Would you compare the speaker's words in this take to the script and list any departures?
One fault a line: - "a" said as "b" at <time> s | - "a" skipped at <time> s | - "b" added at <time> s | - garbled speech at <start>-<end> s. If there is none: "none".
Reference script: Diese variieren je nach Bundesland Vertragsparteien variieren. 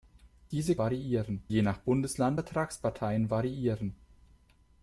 none